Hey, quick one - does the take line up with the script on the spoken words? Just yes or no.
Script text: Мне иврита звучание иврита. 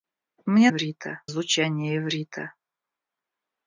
yes